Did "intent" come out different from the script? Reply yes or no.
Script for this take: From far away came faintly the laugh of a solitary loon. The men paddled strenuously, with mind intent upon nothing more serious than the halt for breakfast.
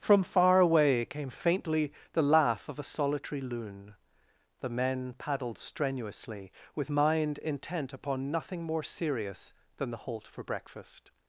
no